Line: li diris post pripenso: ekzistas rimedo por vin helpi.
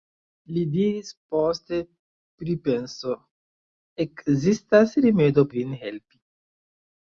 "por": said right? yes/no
no